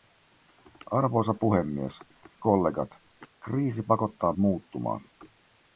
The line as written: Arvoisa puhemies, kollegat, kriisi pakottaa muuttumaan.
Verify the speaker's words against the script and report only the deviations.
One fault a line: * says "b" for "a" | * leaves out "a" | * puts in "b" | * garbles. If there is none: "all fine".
all fine